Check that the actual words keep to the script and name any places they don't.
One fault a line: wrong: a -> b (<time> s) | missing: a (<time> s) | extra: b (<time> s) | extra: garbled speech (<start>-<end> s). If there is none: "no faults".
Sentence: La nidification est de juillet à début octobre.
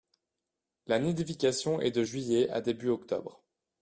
no faults